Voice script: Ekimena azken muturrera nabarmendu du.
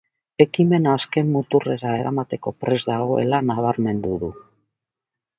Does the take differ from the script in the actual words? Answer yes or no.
yes